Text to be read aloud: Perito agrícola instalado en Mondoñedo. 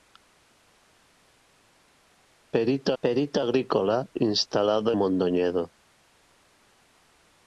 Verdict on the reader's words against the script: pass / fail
fail